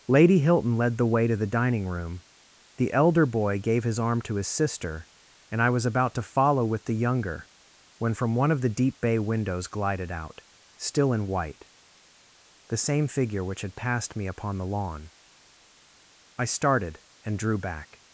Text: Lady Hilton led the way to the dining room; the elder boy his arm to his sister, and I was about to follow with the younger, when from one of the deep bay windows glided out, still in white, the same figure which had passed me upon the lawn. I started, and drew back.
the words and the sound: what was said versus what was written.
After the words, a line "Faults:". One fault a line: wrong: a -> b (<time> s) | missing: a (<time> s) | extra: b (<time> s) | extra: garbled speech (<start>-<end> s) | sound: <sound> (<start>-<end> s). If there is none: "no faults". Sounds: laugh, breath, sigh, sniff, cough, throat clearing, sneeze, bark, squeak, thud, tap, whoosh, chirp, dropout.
Lady Hilton led the way to the dining room; the elder boy gave his arm to his sister, and I was about to follow with the younger, when from one of the deep bay windows glided out, still in white, the same figure which had passed me upon the lawn. I started, and drew back.
Faults:
extra: gave (3.6 s)